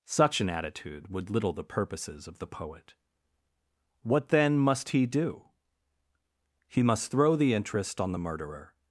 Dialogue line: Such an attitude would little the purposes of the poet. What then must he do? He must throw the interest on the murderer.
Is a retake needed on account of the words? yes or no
no